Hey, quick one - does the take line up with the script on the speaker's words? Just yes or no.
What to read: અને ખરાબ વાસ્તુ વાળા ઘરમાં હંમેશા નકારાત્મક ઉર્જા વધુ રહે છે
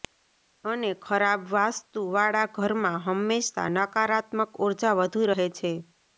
yes